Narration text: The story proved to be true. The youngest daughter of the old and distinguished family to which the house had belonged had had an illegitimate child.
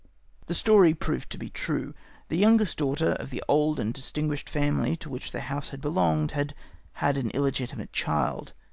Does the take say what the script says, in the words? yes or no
yes